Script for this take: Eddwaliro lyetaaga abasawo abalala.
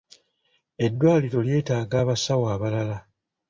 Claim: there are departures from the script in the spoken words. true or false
false